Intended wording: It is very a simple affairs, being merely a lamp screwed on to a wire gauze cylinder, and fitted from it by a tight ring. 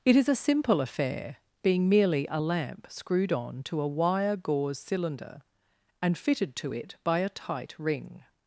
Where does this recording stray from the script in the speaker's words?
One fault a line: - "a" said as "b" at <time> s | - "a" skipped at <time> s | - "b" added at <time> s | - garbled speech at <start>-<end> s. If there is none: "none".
- "very" skipped at 0.3 s
- "affairs" said as "affair" at 0.8 s
- "from" said as "to" at 6.5 s